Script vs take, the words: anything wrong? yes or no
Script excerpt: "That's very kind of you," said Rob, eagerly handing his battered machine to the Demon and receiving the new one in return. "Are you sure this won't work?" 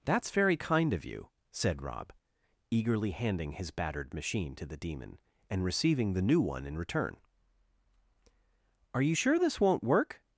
no